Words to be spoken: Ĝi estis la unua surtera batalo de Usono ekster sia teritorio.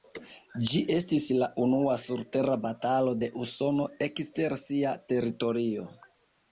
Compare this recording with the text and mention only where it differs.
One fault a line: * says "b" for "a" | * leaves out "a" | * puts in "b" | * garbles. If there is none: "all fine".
all fine